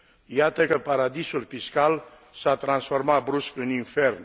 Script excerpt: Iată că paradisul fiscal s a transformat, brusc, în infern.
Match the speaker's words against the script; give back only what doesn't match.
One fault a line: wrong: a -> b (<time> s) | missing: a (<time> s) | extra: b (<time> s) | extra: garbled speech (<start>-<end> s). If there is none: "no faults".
no faults